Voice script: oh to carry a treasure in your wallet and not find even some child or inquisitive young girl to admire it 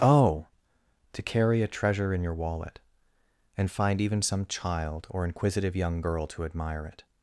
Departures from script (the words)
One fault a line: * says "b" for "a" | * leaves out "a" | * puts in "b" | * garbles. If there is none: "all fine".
* leaves out "not"